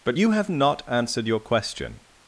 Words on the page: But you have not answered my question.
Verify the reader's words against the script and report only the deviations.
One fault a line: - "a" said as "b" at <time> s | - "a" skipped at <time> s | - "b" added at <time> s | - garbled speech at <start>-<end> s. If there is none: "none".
- "my" said as "your" at 1.3 s